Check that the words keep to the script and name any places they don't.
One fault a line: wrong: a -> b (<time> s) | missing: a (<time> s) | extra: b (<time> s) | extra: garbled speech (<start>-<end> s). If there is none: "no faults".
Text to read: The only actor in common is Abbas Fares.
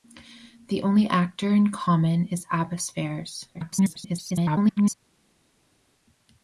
extra: garbled speech (3.5-4.9 s)